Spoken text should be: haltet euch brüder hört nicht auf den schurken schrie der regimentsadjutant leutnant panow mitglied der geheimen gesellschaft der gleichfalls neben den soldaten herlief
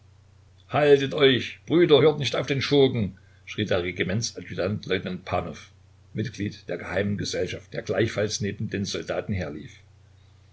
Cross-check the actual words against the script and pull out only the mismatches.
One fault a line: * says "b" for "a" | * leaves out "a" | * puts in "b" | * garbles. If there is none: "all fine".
all fine